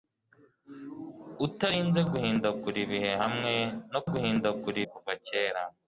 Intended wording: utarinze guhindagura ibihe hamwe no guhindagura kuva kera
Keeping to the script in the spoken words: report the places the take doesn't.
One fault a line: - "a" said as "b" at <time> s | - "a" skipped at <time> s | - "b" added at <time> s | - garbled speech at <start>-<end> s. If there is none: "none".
none